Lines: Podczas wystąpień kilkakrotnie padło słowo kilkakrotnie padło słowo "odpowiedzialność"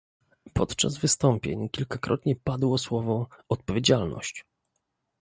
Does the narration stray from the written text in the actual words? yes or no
yes